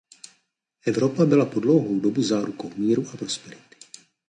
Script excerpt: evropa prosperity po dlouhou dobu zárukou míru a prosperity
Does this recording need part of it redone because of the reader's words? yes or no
yes